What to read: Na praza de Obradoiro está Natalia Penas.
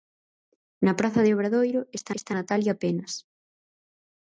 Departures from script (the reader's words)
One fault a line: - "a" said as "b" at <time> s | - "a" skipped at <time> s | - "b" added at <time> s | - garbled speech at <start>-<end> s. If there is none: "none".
- "está" added at 2.2 s